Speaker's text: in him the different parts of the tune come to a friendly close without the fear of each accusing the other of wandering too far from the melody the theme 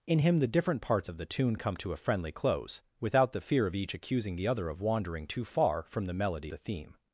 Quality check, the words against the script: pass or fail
pass